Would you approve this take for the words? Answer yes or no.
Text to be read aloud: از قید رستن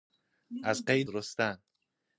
yes